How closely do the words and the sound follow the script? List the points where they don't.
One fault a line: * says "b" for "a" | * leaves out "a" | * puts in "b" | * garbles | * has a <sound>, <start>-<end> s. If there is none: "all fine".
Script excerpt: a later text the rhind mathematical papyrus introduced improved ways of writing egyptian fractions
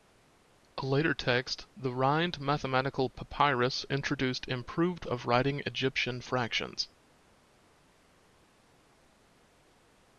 * leaves out "ways"